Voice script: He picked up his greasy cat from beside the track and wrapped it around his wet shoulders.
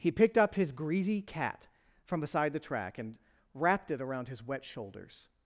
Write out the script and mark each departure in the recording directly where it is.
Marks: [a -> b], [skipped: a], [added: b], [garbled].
He picked up his greasy cat from beside the track and wrapped it around his wet shoulders.